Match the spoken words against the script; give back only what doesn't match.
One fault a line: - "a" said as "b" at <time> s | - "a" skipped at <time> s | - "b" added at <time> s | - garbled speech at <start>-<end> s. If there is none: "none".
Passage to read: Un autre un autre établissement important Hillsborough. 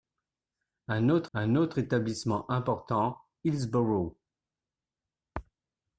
none